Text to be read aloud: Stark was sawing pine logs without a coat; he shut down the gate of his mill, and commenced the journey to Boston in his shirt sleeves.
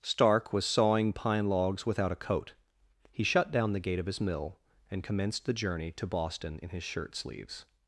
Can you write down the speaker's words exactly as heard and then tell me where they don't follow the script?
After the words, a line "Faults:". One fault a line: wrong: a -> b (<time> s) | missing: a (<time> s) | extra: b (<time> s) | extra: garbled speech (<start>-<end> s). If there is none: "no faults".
Stark was sawing pine logs without a coat; he shut down the gate of his mill, and commenced the journey to Boston in his shirt sleeves.
Faults:
no faults